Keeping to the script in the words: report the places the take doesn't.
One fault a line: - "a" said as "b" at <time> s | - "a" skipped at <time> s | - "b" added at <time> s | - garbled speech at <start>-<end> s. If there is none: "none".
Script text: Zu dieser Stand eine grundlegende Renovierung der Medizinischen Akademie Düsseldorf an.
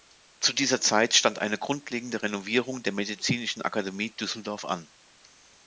- "Zeit" added at 0.8 s